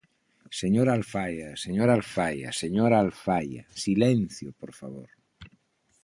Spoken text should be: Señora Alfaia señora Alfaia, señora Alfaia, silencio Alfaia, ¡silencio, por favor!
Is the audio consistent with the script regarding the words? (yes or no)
no